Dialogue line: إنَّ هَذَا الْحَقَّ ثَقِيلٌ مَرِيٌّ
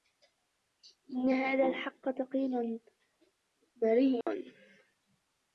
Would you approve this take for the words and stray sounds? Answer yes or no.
no